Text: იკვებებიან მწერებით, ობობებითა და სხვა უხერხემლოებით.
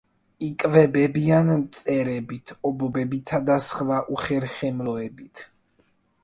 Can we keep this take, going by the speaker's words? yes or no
yes